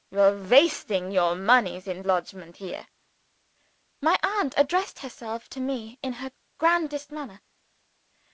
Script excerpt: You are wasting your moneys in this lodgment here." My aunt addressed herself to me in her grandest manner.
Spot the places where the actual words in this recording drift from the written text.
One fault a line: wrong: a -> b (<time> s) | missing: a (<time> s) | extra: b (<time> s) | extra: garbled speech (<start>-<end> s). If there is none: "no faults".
missing: this (2.0 s)